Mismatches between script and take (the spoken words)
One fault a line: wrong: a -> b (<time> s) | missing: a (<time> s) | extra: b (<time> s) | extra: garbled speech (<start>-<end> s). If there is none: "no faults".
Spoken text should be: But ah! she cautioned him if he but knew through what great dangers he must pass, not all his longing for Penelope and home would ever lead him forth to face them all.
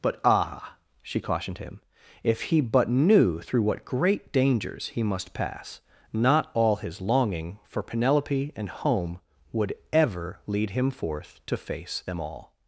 no faults